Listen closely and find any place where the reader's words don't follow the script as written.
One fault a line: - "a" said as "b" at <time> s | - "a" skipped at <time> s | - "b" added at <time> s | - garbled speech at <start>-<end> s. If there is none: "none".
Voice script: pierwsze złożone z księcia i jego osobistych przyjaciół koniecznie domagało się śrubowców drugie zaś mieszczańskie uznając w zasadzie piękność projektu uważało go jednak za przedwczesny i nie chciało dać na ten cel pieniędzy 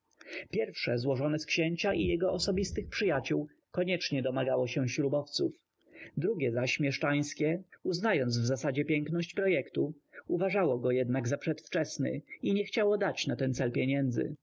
none